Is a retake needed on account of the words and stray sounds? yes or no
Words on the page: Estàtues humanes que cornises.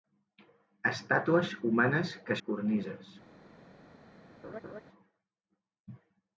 yes